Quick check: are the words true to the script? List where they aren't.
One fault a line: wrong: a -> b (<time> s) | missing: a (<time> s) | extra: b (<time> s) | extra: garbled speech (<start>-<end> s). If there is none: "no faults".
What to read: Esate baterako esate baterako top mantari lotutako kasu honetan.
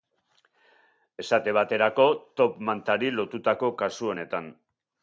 missing: esate baterako (2.1 s)